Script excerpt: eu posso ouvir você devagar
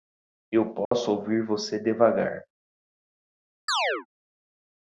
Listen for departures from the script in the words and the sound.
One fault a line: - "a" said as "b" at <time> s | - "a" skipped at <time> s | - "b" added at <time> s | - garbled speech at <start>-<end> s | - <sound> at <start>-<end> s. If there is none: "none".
- dropout at 0.9-0.9 s
- chirp at 3.7-4.1 s